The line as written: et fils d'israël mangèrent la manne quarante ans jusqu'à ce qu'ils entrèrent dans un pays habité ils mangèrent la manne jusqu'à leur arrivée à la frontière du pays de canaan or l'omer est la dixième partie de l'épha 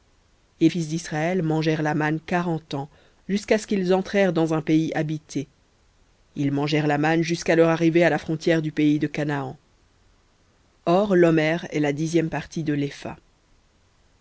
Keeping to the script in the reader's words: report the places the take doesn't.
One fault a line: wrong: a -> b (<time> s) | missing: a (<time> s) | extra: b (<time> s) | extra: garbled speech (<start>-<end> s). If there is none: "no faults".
no faults